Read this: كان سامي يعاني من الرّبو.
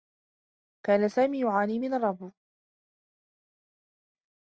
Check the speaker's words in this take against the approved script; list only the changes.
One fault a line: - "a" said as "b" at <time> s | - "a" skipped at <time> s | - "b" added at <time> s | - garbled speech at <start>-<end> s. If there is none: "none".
none